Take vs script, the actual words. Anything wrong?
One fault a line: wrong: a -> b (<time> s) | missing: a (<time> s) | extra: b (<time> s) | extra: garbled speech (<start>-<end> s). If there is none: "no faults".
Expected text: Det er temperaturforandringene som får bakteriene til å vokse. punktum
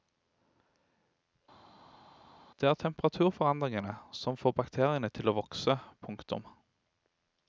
no faults